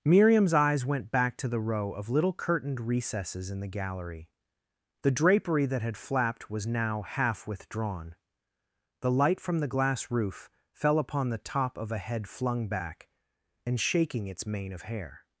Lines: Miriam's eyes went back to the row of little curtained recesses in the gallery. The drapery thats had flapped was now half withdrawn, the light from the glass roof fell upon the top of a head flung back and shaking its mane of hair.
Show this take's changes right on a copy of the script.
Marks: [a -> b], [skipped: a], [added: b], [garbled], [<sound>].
Miriam's eyes went back to the row of little curtained recesses in the gallery. The drapery [thats -> that] had flapped was now half withdrawn, the light from the glass roof fell upon the top of a head flung back and shaking its mane of hair.